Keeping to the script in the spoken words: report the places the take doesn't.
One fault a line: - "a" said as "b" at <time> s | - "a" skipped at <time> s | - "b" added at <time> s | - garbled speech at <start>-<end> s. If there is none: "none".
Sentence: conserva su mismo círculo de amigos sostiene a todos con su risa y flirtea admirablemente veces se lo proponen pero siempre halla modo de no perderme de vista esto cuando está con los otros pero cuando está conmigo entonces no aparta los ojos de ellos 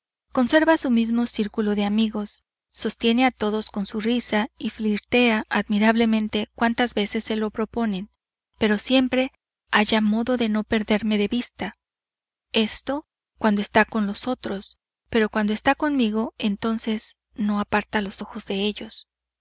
- "cuantas" added at 6.5 s